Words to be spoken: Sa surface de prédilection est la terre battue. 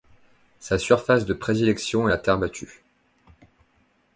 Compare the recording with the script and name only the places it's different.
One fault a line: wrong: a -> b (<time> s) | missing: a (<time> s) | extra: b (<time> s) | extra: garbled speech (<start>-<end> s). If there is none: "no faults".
no faults